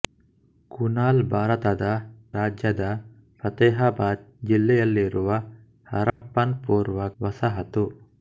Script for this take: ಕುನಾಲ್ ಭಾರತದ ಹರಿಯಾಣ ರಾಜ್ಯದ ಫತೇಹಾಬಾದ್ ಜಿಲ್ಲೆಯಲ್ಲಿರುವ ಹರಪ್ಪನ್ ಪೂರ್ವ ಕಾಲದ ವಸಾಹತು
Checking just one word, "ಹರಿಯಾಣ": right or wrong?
wrong